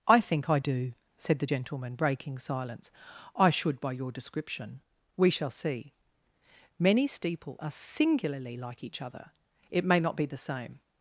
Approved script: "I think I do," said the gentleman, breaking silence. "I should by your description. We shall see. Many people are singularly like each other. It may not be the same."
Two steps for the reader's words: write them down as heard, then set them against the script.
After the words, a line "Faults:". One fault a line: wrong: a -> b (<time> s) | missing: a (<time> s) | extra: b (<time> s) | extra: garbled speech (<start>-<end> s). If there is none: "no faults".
"I think I do," said the gentleman, breaking silence. "I should by your description. We shall see. Many steeple are singularly like each other. It may not be the same."
Faults:
wrong: people -> steeple (7.1 s)